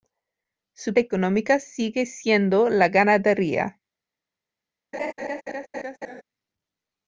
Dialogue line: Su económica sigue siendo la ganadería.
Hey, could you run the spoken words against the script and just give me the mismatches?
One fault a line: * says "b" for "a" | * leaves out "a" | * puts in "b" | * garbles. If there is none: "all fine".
all fine